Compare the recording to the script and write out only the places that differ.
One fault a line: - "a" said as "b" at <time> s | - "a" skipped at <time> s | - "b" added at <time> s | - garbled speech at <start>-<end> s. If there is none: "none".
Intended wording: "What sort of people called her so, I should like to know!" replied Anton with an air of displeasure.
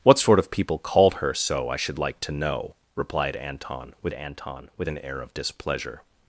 - "Anton with" added at 4.1 s